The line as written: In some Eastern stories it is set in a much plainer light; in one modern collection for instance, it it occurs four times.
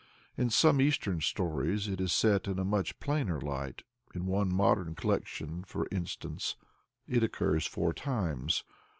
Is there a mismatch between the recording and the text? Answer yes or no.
yes